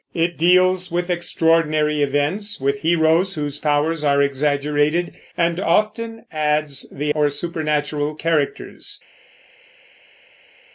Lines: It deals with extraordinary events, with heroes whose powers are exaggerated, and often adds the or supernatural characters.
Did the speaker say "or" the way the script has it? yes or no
yes